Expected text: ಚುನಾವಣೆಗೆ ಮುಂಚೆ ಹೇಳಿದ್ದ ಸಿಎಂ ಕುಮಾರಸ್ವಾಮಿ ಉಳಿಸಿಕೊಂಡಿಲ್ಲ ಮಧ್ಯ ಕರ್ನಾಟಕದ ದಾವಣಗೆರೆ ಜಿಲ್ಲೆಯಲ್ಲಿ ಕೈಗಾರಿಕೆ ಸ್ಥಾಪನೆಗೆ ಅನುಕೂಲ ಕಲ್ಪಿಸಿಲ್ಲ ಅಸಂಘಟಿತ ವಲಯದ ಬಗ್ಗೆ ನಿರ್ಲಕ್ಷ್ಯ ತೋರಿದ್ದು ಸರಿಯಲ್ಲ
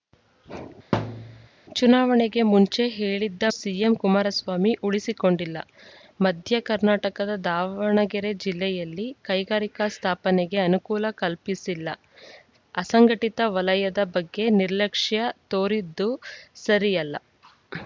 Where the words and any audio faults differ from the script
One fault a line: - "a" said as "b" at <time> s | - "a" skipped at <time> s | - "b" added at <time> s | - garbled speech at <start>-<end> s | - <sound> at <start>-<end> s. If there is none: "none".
- thud at 0.9-1.5 s